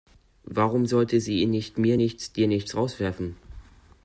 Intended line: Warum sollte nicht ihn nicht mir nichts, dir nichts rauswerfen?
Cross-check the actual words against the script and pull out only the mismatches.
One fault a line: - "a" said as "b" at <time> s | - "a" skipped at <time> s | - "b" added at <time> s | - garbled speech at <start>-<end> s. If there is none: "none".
- "nicht" said as "sie" at 1.2 s